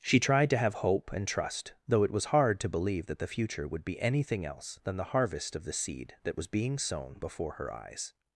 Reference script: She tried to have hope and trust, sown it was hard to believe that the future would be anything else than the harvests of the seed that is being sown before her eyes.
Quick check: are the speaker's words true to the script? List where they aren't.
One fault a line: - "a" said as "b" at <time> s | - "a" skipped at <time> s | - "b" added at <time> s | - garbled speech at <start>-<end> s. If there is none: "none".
- "sown" said as "though" at 1.9 s
- "harvests" said as "harvest" at 5.0 s
- "is" said as "was" at 6.3 s